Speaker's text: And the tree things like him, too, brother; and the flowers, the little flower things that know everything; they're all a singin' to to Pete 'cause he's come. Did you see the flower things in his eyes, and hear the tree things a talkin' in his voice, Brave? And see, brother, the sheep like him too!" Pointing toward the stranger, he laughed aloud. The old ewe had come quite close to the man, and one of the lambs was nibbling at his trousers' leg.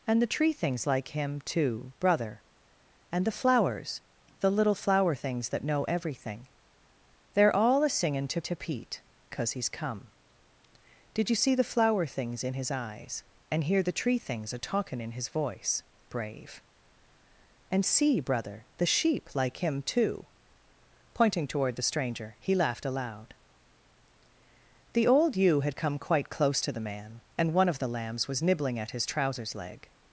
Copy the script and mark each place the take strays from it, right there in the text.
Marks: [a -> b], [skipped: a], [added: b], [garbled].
And the tree things like him, too, brother; and the flowers, the little flower things that know everything; they're all a singin' to to Pete 'cause he's come. Did you see the flower things in his eyes, and hear the tree things a talkin' in his voice, Brave? And see, brother, the sheep like him too!" Pointing toward the stranger, he laughed aloud. The old ewe had come quite close to the man, and one of the lambs was nibbling at his trousers' leg.